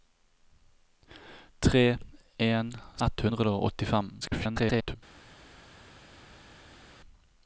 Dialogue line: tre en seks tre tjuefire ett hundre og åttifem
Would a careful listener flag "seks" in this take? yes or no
yes